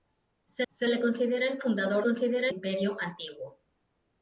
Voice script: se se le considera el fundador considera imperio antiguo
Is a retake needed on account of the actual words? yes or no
no